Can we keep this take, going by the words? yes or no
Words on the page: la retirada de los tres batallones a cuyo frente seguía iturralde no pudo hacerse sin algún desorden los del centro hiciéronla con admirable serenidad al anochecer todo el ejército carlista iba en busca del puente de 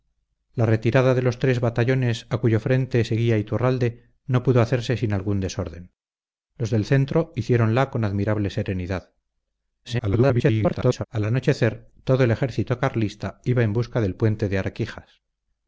no